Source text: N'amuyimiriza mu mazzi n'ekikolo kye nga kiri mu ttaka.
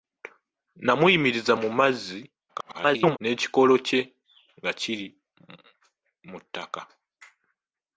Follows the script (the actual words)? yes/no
no